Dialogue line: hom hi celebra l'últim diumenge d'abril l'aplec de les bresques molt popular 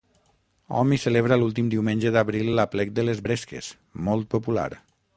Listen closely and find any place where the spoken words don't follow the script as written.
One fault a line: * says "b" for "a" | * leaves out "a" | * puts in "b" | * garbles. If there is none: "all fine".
all fine